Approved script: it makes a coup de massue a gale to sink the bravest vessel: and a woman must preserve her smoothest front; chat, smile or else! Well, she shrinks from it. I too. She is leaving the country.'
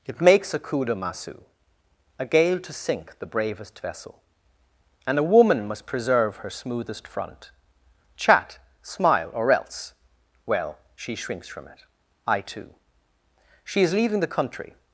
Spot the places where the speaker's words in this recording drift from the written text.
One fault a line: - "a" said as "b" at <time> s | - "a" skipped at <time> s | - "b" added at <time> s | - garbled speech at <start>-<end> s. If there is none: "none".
none